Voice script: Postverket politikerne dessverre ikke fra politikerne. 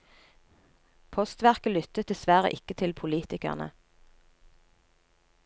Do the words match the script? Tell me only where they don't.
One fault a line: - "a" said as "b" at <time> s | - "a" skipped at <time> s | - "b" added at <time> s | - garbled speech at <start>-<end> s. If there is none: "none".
- "politikerne" said as "lyttet" at 1.8 s
- "fra" said as "til" at 2.8 s